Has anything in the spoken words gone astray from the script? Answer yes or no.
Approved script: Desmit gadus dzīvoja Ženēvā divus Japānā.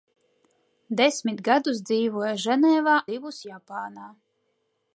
no